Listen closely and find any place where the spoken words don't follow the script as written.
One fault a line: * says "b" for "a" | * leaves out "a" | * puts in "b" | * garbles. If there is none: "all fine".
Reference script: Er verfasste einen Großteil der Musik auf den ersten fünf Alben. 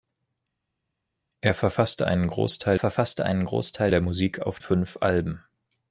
* puts in "verfasste einen Großteil"
* leaves out "den ersten"